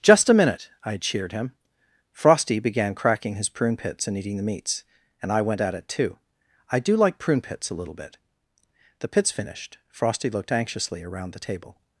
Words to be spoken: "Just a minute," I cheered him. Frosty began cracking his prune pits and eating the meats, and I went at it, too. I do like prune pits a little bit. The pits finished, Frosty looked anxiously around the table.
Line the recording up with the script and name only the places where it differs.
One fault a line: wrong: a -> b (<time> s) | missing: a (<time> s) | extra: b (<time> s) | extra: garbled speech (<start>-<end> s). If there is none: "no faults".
no faults